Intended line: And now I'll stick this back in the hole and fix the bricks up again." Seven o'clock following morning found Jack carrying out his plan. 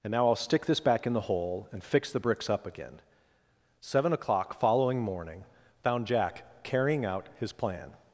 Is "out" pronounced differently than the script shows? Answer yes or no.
no